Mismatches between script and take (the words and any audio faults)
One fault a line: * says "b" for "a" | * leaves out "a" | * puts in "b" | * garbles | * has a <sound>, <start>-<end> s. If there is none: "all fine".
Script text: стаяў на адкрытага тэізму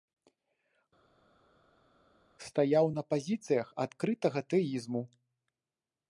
* puts in "пазіцыях"